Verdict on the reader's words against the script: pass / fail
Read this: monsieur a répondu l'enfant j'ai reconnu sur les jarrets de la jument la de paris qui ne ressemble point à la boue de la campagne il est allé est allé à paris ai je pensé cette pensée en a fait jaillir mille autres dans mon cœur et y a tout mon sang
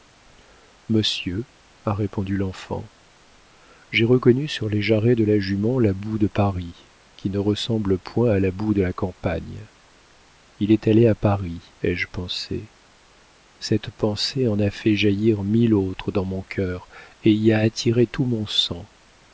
fail